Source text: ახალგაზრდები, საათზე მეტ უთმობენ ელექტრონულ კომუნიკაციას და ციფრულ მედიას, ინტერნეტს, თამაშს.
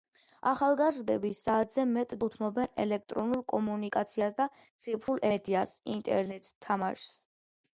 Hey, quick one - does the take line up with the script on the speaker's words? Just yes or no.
yes